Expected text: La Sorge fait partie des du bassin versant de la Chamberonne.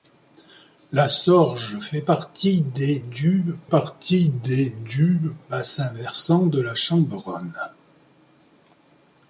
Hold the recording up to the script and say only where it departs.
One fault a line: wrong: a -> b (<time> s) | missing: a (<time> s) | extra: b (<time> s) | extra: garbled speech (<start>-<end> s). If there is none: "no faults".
extra: partie des du (3.6 s)